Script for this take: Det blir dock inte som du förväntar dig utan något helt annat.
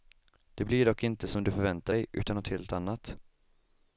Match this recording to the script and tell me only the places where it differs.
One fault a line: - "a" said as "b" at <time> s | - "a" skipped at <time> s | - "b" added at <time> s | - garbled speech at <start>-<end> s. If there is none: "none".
none